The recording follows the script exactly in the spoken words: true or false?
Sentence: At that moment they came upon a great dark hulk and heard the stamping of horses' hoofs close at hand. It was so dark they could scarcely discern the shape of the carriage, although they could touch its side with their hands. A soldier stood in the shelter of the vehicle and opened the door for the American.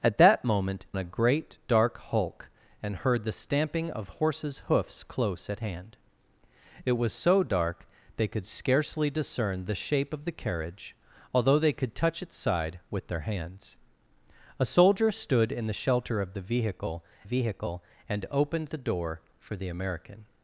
false